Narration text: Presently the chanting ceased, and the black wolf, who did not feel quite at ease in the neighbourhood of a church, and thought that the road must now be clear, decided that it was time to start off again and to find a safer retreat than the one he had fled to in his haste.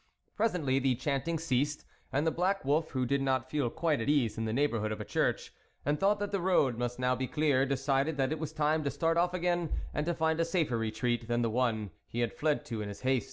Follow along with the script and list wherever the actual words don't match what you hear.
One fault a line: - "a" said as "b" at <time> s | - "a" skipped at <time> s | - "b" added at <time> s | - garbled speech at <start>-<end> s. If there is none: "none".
none